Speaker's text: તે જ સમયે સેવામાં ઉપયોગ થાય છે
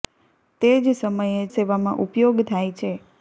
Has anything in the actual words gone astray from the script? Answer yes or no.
no